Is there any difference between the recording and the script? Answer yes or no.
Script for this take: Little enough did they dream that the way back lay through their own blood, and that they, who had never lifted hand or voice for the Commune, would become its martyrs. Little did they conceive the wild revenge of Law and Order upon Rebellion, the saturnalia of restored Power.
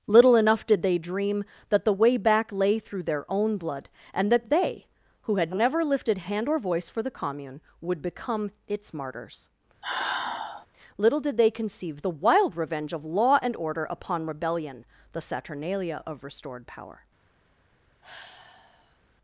no